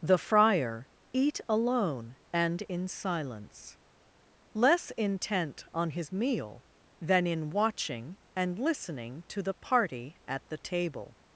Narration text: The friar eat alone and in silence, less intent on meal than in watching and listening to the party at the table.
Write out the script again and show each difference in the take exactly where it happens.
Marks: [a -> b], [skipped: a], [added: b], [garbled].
The friar eat alone and in silence, less intent on [added: his] meal than in watching and listening to the party at the table.